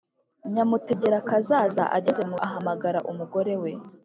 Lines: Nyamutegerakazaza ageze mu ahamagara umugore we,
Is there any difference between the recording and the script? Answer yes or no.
no